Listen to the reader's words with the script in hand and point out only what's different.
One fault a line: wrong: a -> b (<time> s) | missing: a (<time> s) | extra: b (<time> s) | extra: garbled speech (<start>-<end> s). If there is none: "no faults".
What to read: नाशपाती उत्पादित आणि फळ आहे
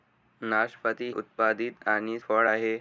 no faults